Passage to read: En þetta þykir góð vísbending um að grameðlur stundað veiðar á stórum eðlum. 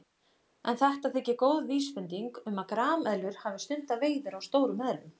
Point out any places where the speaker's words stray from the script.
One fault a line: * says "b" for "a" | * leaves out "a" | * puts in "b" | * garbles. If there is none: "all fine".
* puts in "hafi"